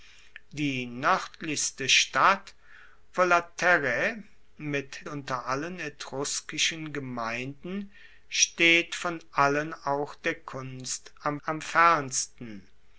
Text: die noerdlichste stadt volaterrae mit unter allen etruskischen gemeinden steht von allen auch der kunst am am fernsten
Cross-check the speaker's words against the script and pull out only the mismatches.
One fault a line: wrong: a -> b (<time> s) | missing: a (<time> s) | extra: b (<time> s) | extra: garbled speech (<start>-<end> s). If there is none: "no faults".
no faults